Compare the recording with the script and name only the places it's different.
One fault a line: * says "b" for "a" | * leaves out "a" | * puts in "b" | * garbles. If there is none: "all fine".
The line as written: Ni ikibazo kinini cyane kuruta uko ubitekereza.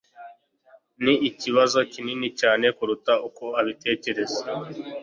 all fine